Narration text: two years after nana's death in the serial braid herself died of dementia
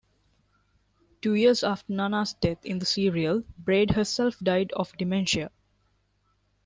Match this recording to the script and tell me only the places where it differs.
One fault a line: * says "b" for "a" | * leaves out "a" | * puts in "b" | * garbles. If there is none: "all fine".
all fine